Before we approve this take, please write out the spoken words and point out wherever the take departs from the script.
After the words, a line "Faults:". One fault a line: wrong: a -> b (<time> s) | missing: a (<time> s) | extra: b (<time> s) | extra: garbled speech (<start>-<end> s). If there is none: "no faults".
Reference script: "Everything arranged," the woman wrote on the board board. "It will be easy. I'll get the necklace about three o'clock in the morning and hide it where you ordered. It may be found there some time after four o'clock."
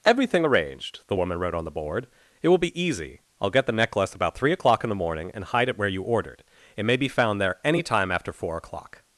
"Everything arranged," the woman wrote on the board. "It will be easy. I'll get the necklace about three o'clock in the morning and hide it where you ordered. It may be found there any time after four o'clock."
Faults:
missing: board (2.1 s)
wrong: some -> any (7.6 s)